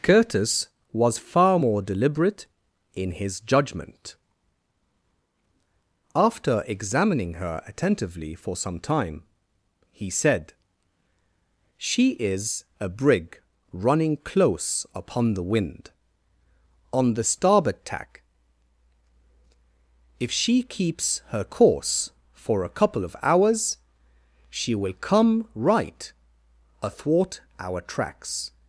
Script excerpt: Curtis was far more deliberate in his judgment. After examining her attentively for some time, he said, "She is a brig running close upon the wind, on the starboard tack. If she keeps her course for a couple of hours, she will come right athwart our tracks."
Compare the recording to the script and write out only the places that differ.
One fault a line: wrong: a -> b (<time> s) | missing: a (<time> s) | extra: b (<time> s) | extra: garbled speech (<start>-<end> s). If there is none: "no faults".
no faults